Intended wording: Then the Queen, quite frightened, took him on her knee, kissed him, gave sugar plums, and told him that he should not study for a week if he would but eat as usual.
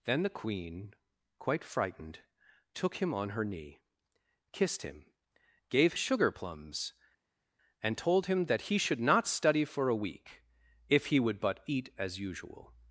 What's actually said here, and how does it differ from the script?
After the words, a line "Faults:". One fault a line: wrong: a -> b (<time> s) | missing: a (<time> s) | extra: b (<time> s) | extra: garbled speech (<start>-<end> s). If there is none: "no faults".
Then the Queen, quite frightened, took him on her knee, kissed him, gave sugar plums, and told him that he should not study for a week if he would but eat as usual.
Faults:
no faults